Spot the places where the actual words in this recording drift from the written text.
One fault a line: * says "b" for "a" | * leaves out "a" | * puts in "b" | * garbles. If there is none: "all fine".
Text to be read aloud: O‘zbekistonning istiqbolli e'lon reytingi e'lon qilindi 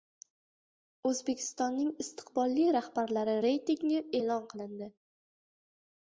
* says "rahbarlari" for "e'lon"